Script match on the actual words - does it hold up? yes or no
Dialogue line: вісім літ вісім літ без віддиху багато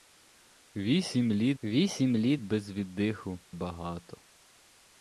yes